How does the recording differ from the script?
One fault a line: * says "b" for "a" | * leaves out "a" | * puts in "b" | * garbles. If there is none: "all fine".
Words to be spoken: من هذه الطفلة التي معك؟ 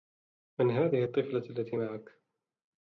all fine